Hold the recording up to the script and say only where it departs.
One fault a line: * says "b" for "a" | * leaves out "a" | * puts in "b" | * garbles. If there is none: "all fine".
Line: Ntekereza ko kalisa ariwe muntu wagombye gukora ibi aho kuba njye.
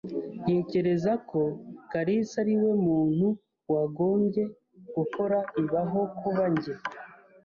all fine